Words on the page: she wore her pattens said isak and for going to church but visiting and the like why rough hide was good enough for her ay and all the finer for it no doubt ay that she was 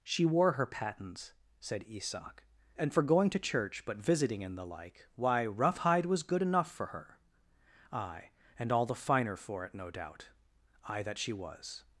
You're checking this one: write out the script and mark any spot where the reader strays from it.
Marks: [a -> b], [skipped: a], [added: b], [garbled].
she wore her pattens said isak and for going to church but visiting and the like why rough hide was good enough for her ay and all the finer for it no doubt ay that she was